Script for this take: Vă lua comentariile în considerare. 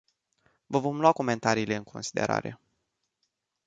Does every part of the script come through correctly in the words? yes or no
no